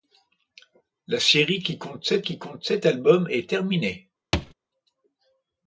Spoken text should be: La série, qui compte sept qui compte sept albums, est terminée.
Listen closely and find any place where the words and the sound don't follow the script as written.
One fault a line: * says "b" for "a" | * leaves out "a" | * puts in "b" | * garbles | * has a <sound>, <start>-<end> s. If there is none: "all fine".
* has a thud, 4.3-4.5 s